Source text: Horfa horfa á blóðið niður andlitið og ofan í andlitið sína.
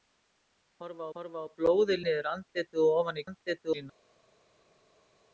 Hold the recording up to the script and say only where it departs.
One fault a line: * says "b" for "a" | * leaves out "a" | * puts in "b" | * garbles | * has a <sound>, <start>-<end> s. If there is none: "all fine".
all fine